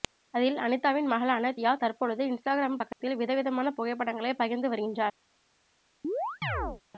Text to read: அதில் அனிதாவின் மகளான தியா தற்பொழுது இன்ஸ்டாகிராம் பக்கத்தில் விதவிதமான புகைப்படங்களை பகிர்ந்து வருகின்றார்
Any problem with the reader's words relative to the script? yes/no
no